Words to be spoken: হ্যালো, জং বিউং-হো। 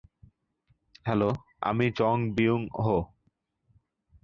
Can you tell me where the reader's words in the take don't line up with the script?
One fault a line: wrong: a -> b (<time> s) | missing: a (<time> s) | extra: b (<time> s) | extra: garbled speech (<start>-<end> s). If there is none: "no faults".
extra: আমি (1.6 s)